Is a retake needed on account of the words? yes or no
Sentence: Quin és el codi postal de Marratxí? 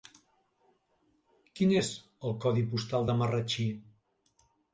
no